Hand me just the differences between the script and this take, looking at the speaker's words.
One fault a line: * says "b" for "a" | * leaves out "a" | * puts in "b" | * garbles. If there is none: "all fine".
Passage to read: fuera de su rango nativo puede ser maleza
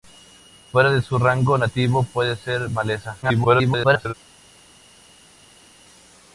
* garbles